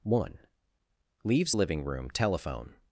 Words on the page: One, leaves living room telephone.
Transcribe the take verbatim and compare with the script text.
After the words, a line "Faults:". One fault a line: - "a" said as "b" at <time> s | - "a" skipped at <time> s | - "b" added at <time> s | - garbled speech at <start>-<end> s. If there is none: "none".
One, leaves living room telephone.
Faults:
none